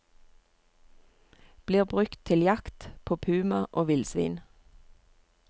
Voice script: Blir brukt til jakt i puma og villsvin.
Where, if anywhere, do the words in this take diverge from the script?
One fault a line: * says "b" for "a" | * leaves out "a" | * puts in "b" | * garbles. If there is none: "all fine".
* says "på" for "i"